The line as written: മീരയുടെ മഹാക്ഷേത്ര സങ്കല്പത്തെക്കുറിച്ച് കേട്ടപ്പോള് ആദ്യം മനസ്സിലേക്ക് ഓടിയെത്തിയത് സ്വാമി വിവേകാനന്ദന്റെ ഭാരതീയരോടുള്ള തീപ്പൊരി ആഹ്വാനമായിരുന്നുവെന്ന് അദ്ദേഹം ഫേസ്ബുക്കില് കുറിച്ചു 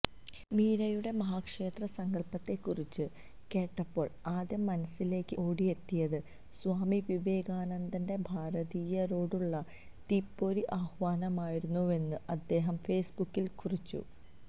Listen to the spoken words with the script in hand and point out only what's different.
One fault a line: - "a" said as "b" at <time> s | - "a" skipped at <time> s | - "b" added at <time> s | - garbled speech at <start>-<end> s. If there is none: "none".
none